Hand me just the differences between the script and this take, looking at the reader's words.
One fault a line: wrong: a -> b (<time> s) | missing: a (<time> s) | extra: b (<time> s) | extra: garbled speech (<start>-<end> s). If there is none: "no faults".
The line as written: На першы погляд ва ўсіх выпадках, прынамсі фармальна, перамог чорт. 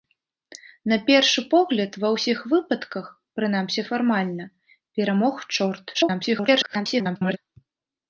extra: garbled speech (5.9-7.4 s)